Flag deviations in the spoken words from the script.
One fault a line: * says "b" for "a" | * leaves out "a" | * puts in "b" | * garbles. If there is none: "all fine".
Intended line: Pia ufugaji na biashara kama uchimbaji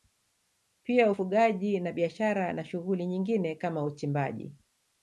* puts in "na shughuli nyingine"